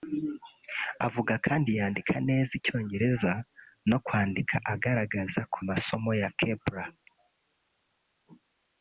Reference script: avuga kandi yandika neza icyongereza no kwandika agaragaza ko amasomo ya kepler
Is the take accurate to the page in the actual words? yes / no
yes